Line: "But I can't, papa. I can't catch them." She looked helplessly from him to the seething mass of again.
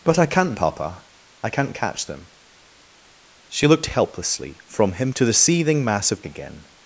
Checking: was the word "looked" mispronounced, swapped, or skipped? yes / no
no